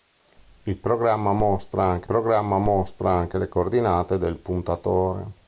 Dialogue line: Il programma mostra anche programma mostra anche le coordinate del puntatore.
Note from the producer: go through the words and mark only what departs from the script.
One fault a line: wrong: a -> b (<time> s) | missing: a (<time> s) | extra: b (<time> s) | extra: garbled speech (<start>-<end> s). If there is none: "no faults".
no faults